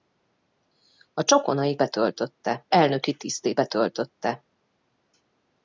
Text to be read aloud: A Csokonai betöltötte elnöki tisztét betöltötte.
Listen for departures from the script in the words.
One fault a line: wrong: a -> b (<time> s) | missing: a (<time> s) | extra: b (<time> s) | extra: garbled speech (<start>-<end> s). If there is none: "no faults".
no faults